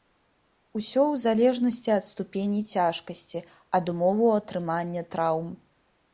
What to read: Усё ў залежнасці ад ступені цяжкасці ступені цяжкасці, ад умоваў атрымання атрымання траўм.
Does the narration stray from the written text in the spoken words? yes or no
yes